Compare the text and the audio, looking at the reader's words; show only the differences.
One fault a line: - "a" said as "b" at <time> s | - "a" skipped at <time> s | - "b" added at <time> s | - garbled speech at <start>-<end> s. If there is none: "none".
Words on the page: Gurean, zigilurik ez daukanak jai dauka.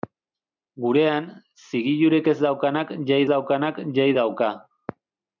- "daukanak jai" added at 3.3 s